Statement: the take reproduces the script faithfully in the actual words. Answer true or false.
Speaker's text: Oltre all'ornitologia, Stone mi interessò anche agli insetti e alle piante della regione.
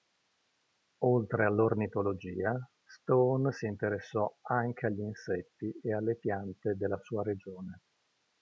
false